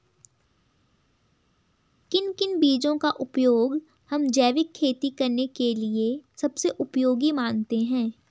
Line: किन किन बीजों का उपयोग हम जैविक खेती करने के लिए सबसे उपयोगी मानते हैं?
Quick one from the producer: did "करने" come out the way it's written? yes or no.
yes